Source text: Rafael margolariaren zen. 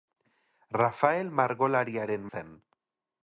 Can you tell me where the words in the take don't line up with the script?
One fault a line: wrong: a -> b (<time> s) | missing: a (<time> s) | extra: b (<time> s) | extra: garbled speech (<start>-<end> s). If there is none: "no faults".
no faults